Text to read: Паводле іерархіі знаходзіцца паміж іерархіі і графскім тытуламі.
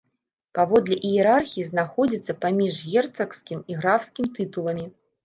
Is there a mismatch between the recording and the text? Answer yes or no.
yes